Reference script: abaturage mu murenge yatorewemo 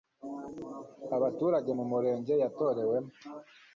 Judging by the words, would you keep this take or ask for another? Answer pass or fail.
pass